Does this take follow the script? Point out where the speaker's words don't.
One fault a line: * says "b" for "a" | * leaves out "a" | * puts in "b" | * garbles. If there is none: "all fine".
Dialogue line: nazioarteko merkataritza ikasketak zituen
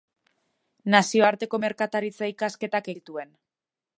all fine